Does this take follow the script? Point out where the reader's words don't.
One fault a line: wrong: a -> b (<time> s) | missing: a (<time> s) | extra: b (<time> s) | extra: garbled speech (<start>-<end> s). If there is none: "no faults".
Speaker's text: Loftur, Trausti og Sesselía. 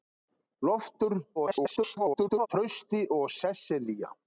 extra: garbled speech (1.4-2.5 s)